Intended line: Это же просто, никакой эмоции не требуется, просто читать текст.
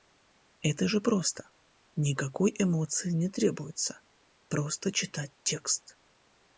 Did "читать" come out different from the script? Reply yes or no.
no